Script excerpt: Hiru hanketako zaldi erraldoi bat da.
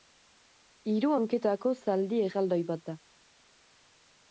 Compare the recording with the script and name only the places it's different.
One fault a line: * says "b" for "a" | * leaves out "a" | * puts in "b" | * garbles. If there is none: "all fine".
all fine